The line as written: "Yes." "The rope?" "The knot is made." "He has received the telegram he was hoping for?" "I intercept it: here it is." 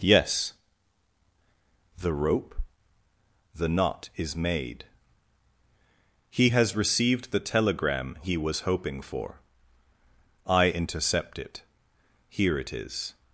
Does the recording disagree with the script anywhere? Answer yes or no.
no